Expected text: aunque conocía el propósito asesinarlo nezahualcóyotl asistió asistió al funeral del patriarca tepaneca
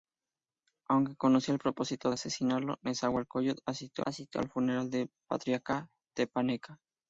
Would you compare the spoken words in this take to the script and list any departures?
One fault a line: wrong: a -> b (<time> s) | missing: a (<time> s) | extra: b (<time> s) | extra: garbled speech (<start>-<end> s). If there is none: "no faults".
no faults